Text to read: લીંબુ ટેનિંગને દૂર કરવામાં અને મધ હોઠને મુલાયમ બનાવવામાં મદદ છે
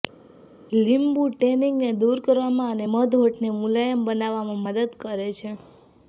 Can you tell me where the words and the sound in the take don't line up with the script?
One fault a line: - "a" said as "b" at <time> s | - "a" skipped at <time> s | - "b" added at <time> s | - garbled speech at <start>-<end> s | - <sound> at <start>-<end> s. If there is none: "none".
- "કરે" added at 5.0 s